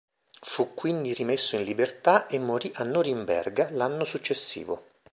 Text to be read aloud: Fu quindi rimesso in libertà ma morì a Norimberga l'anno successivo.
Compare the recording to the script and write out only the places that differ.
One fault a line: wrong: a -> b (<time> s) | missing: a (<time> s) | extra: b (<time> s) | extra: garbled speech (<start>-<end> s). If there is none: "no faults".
wrong: ma -> e (2.3 s)